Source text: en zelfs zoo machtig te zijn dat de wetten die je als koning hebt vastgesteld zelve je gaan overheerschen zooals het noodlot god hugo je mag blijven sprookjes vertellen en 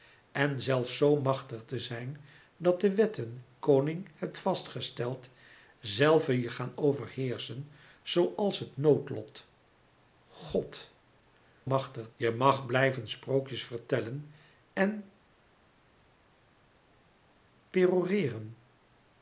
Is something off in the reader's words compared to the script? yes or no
yes